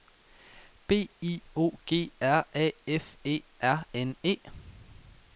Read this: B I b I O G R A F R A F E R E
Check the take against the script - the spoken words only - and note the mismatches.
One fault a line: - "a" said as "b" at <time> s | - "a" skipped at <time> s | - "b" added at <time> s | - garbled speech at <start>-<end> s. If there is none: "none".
- "b I" skipped at 1.4 s
- "R A F" skipped at 3.2 s
- "N" added at 3.9 s